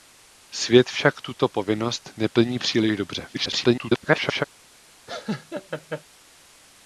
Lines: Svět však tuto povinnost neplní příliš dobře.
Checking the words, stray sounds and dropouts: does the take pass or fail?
fail